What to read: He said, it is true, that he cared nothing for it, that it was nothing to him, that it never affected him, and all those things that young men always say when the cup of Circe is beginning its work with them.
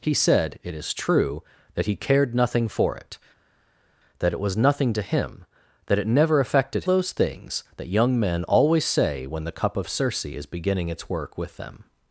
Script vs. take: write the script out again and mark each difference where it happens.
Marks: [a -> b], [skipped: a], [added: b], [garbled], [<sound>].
He said, it is true, that he cared nothing for it, that it was nothing to him, that it never affected [skipped: him, and all] those things that young men always say when the cup of Circe is beginning its work with them.